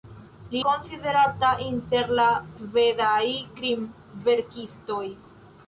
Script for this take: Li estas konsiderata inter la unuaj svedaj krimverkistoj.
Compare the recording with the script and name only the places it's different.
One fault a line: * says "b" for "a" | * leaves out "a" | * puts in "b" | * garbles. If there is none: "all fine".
* leaves out "estas"
* leaves out "unuaj"